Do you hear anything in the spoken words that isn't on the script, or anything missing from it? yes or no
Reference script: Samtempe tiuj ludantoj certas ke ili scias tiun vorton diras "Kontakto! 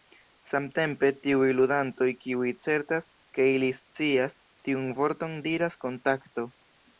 yes